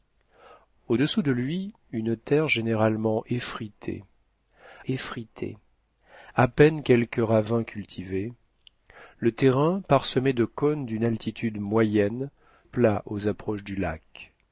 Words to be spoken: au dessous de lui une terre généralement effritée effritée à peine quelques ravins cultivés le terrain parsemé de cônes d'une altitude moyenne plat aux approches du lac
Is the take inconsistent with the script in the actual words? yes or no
no